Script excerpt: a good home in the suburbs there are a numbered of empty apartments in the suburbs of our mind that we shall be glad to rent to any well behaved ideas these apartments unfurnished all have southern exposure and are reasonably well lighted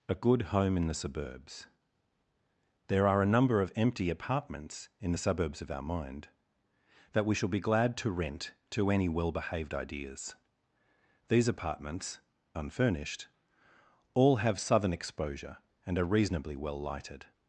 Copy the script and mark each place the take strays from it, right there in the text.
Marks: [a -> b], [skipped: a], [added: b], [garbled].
a good home in the suburbs there are a [numbered -> number] of empty apartments in the suburbs of our mind that we shall be glad to rent to any well behaved ideas these apartments unfurnished all have southern exposure and are reasonably well lighted